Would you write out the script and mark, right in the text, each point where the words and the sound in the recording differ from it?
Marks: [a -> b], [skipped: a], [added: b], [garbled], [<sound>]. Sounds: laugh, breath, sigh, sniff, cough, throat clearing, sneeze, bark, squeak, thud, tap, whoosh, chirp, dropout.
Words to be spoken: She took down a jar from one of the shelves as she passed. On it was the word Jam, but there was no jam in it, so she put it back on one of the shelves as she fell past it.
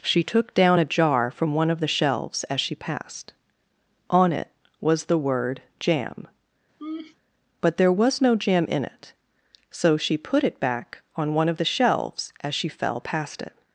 She took down a jar from one of the shelves as she passed. On it was the word Jam, [laugh] but there was no jam in it, so she put it back on one of the shelves as she fell past it.